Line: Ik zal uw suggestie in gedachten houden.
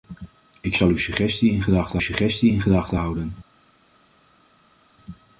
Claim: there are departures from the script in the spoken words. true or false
true